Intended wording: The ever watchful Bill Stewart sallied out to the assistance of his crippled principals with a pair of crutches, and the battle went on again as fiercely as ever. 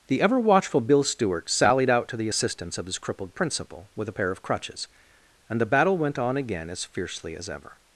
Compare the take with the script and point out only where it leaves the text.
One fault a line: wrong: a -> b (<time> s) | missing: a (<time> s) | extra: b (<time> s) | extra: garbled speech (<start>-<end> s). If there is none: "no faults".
wrong: principals -> principal (3.3 s)